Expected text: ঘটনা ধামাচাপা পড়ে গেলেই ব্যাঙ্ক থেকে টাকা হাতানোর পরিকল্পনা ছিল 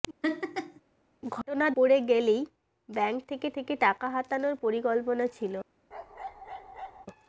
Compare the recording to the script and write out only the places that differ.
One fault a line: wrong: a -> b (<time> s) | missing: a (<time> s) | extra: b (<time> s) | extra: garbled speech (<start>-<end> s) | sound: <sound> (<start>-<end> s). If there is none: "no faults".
sound: laugh (0.2-0.8 s)
missing: ধামাচাপা (1.6 s)
extra: থেকে (3.5 s)
sound: bark (5.9-7.1 s)